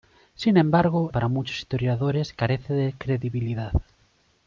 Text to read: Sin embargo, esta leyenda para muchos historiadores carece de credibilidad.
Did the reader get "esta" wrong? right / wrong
wrong